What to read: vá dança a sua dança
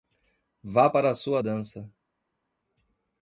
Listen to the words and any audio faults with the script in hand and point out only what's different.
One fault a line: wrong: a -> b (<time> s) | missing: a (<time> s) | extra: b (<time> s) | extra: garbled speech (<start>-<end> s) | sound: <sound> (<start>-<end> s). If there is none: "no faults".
wrong: dança -> para (0.9 s)